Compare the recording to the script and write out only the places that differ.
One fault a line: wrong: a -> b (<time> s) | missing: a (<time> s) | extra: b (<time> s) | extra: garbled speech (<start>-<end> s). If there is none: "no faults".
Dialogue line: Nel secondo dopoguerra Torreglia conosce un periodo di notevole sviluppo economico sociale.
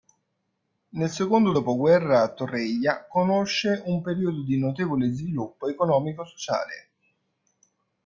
no faults